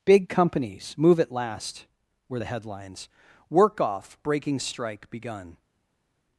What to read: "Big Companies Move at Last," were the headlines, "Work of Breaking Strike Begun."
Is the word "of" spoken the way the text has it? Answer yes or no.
no